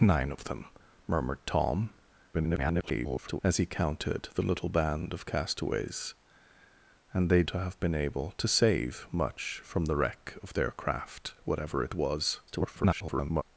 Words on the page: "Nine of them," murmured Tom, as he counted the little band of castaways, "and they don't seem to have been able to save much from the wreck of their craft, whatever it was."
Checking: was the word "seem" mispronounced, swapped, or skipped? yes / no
yes